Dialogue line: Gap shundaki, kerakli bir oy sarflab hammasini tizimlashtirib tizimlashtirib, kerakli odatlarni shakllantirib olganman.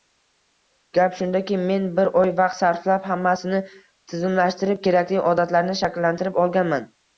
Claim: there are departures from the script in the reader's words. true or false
true